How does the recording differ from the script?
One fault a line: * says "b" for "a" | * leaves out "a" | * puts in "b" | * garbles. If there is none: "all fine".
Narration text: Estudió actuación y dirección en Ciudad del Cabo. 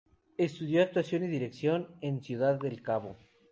all fine